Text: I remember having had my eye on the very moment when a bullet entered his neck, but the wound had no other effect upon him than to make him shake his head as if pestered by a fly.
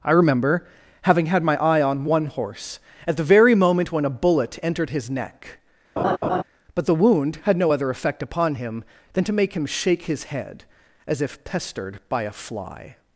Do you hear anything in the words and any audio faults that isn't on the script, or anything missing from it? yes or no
yes